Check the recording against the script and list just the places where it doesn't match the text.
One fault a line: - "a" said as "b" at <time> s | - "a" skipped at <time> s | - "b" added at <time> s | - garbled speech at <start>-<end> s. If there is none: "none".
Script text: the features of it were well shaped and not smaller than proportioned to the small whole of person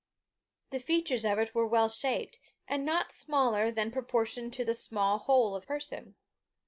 none